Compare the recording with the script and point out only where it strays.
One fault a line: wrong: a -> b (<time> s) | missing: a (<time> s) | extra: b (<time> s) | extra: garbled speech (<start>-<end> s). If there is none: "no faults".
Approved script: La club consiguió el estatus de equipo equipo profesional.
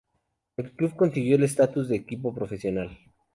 wrong: La -> El (0.6 s)
missing: equipo (2.3 s)